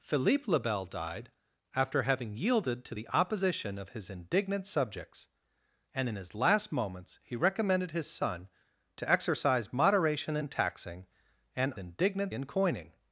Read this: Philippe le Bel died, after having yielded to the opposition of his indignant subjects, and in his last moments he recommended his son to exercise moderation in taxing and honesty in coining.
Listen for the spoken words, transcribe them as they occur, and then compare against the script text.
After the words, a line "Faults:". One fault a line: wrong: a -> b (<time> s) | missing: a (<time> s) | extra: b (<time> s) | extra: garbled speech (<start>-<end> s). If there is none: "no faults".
Philippe le Bel died, after having yielded to the opposition of his indignant subjects, and in his last moments he recommended his son to exercise moderation in taxing and indignant in coining.
Faults:
wrong: honesty -> indignant (11.8 s)